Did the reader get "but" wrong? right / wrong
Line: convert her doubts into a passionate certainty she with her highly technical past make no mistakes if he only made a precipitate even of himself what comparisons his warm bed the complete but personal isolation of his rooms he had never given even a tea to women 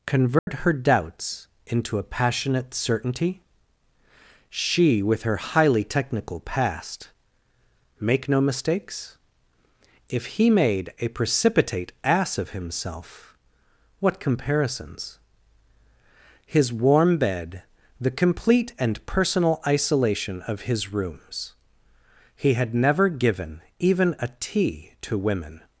wrong